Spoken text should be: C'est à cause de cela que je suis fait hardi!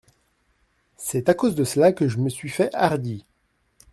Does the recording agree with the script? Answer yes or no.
no